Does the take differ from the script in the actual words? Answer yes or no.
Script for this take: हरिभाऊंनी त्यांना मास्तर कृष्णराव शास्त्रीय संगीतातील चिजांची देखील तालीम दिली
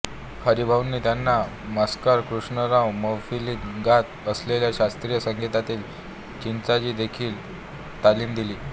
yes